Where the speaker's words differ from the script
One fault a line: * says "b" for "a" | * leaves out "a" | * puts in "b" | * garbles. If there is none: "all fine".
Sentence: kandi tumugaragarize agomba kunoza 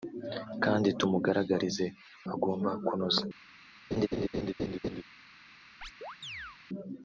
all fine